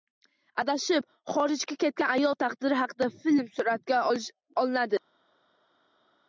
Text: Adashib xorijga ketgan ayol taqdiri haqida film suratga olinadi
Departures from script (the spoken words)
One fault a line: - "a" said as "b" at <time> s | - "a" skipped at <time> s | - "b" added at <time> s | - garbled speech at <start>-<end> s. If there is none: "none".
none